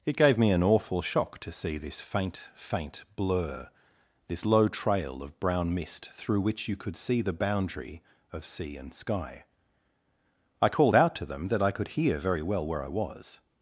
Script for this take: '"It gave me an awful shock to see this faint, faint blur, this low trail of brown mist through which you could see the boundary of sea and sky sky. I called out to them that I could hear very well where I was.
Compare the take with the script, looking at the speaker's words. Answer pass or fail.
fail